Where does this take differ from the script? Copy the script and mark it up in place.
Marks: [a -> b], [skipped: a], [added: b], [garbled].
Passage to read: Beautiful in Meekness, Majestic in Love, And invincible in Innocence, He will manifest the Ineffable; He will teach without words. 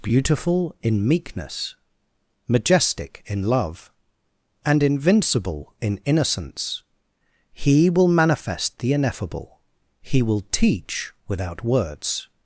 Beautiful in Meekness, Majestic in Love, And invincible in Innocence, He will manifest the Ineffable; He will teach without words.